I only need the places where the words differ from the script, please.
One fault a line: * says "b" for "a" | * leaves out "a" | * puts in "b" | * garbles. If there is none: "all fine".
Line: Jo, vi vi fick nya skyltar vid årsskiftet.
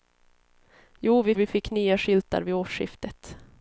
all fine